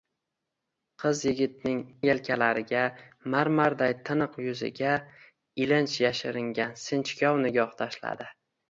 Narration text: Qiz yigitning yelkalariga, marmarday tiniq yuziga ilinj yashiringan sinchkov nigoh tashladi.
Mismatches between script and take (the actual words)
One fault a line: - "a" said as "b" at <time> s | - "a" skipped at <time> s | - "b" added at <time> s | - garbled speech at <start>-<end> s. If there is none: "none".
none